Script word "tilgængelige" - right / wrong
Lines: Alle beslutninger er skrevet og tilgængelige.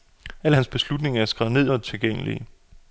right